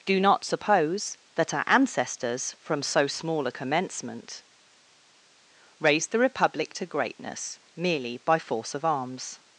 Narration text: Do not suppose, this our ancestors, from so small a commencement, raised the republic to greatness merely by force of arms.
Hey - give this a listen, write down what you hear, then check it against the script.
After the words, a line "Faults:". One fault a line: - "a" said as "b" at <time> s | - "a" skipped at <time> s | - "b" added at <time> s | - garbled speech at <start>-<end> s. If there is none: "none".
Do not suppose, that our ancestors, from so small a commencement, raised the republic to greatness merely by force of arms.
Faults:
- "this" said as "that" at 1.4 s